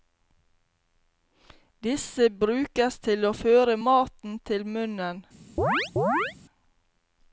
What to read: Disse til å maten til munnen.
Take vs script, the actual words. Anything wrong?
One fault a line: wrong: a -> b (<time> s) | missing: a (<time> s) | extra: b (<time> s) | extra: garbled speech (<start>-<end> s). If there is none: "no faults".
extra: brukes (2.4 s)
extra: føre (3.3 s)